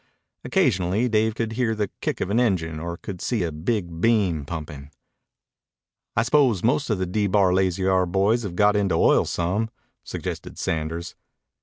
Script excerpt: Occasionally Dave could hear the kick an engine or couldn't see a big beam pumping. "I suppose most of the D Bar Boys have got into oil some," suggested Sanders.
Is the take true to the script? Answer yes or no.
no